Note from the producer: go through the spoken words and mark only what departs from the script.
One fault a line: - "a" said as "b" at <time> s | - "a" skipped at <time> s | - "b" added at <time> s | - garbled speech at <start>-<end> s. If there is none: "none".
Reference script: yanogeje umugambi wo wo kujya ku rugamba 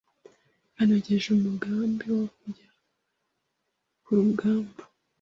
- "wo" skipped at 2.2 s